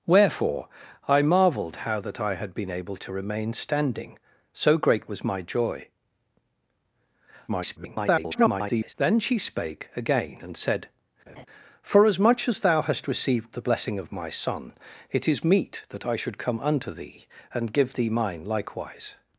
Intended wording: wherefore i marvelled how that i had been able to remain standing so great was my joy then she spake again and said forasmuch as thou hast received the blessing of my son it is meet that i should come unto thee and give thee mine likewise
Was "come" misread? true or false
false